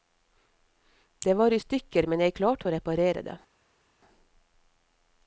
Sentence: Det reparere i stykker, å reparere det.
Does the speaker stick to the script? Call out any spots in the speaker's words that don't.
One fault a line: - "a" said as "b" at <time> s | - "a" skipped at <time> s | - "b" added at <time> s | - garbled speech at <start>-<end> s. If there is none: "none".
- "reparere" said as "var" at 1.3 s
- "men jeg klarte" added at 2.1 s